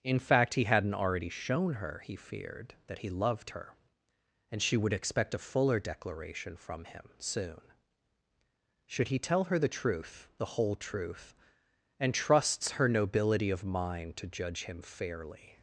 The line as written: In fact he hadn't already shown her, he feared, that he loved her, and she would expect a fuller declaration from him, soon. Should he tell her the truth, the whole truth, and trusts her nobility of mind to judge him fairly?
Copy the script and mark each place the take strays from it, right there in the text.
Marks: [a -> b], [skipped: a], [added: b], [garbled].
In fact he hadn't already shown her, he feared, that he loved her, and she would expect a fuller declaration from him, soon. Should he tell her the truth, the whole truth, and trusts her nobility of mind to judge him fairly?